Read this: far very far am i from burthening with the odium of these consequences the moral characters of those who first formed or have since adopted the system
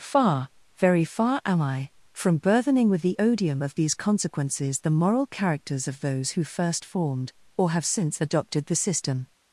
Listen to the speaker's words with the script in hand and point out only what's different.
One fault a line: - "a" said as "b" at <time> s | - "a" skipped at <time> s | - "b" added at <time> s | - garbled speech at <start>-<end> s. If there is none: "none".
none